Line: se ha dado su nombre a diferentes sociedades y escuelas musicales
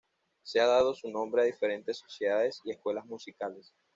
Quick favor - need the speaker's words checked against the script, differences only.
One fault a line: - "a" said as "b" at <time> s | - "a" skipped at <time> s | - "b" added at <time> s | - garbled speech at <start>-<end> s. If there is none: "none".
none